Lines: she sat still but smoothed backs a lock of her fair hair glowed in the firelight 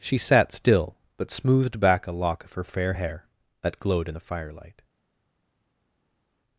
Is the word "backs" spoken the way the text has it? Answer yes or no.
no